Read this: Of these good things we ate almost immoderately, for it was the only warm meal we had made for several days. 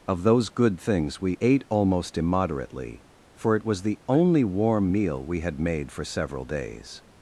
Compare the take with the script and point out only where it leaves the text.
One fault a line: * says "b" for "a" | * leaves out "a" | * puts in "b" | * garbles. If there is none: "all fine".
* says "those" for "these"